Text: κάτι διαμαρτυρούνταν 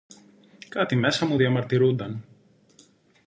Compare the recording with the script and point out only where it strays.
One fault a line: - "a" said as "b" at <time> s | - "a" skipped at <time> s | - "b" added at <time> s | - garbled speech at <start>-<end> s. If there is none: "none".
- "μέσα μου" added at 0.9 s